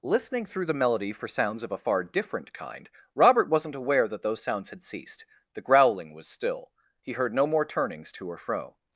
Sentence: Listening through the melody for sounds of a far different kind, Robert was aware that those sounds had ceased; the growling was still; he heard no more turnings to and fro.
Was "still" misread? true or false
false